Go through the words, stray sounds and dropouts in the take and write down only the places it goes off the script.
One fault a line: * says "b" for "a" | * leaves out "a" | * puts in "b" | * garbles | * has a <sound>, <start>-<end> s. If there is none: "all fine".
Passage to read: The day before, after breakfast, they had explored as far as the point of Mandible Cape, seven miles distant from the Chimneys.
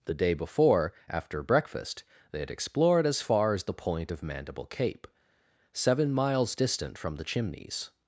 all fine